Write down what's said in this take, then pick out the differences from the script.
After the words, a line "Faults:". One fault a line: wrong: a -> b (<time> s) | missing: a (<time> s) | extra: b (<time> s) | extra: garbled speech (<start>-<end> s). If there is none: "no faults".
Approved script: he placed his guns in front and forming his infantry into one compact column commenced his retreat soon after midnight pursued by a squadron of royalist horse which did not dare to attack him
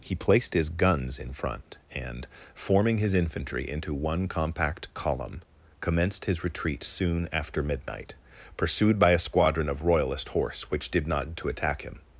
he placed his guns in front and forming his infantry into one compact column commenced his retreat soon after midnight pursued by a squadron of royalist horse which did not to attack him
Faults:
missing: dare (11.3 s)